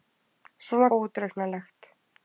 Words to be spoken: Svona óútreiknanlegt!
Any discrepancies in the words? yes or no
no